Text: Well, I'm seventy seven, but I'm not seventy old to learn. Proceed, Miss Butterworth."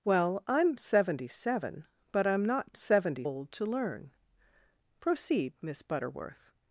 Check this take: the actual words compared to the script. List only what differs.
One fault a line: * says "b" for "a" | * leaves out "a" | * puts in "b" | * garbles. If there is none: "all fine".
all fine